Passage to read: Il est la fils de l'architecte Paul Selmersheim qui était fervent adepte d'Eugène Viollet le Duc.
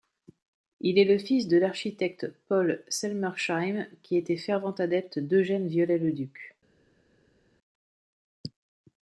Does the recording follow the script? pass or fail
fail